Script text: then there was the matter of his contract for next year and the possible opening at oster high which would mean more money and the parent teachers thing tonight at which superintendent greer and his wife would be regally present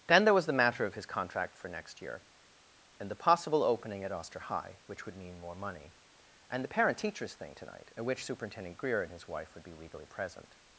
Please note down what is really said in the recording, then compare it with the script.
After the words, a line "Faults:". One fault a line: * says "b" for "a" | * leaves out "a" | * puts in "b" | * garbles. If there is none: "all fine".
then there was the matter of his contract for next year and the possible opening at oster high which would mean more money and the parent teachers thing tonight at which superintendent greer and his wife would be regally present
Faults:
all fine